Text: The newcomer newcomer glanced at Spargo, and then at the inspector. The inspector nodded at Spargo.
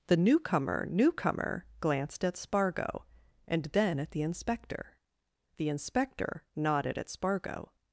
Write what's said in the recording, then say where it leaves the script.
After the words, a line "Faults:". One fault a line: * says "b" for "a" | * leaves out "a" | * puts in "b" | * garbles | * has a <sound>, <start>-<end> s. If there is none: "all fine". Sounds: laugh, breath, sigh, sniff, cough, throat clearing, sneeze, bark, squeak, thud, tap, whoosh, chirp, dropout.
The newcomer newcomer glanced at Spargo, and then at the inspector. The inspector nodded at Spargo.
Faults:
all fine